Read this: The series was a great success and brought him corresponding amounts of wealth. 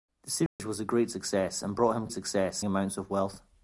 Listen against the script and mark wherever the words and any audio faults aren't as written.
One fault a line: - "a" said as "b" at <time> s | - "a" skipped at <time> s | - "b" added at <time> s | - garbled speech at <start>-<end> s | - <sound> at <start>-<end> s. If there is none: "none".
- dropout at 0.5-0.6 s
- "corresponding" said as "success" at 2.1 s